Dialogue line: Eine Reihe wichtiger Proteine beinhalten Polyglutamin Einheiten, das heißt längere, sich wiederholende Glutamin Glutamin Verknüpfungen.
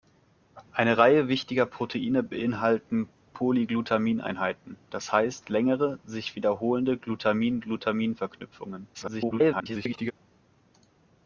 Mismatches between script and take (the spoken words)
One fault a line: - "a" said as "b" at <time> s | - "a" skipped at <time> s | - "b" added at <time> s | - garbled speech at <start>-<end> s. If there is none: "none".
- garbled speech at 8.9-10.1 s